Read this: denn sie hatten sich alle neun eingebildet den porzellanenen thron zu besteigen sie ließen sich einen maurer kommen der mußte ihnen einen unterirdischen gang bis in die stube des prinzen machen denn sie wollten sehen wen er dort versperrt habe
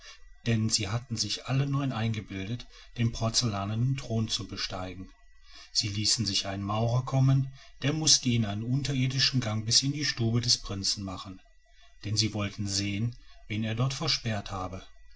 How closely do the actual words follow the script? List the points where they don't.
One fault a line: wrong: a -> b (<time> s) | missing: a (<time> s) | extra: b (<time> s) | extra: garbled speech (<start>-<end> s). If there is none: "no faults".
no faults